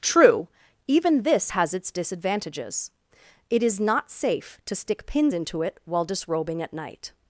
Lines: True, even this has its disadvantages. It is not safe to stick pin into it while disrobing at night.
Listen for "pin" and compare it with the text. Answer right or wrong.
wrong